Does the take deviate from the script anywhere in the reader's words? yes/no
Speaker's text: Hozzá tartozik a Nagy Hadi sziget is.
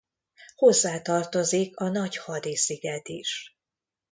no